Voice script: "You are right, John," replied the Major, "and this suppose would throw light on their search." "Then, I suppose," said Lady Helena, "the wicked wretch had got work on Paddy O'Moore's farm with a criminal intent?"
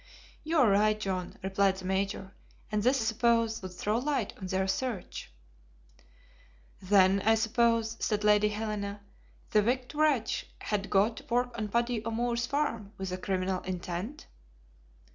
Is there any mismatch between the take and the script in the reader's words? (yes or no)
no